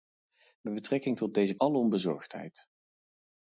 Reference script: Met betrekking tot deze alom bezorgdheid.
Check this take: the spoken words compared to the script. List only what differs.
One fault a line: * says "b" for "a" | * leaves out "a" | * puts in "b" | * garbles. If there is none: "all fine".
all fine